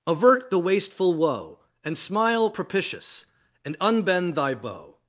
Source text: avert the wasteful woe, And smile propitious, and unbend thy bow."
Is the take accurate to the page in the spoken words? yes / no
yes